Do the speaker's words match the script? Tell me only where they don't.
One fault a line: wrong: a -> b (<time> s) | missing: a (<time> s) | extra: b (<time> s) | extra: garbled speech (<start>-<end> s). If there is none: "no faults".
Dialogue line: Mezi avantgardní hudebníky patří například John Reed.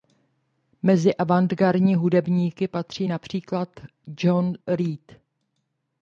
no faults